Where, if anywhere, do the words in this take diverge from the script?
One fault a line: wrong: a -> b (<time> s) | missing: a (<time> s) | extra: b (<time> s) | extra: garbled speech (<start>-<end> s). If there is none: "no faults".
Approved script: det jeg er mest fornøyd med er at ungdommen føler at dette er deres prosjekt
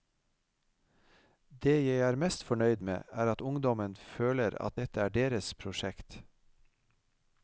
no faults